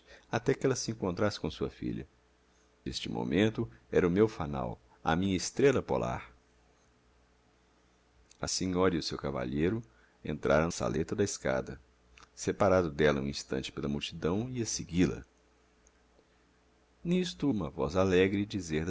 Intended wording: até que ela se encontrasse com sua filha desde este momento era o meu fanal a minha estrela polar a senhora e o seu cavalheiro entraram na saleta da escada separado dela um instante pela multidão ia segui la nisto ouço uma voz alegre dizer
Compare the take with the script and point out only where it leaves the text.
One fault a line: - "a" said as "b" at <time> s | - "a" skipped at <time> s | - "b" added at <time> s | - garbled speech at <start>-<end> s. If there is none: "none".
- "desde" skipped at 2.1 s
- "na" skipped at 10.7 s
- "ouço" skipped at 17.5 s